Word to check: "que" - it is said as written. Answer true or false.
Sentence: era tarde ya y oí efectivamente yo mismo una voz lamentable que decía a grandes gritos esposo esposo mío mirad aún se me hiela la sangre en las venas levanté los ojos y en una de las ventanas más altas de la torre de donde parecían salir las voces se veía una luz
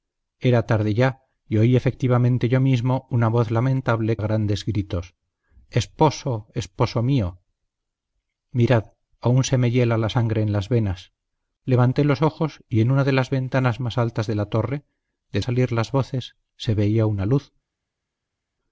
false